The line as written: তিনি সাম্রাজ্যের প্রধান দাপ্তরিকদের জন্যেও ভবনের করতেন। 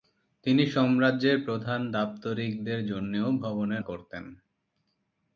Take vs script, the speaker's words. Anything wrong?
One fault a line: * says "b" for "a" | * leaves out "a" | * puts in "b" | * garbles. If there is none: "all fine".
all fine